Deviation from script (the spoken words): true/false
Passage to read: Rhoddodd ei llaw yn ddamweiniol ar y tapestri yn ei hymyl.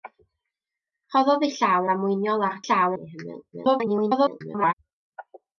true